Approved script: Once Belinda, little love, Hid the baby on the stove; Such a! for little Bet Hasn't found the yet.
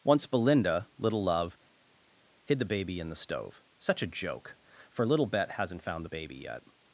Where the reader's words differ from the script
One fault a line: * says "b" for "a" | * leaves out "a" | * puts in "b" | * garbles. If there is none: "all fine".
* says "in" for "on"
* puts in "joke"
* puts in "baby"